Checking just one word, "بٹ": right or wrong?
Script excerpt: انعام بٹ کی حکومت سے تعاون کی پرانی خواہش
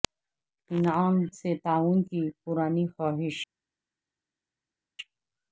wrong